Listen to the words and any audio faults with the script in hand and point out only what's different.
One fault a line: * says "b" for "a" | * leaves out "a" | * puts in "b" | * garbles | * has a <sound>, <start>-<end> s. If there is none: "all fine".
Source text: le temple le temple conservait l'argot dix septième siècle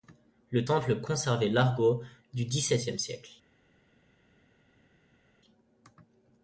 * leaves out "le temple"
* puts in "du"